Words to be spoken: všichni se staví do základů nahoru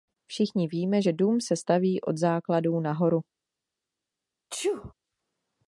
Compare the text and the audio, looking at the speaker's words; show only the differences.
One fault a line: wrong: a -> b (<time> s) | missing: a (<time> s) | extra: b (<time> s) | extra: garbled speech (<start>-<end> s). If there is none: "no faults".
extra: víme že dům (0.7 s)
wrong: do -> od (2.0 s)